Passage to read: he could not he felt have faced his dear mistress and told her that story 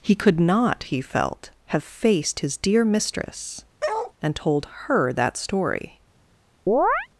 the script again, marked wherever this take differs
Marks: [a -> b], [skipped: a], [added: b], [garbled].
he could not he felt have faced his dear mistress and told her that story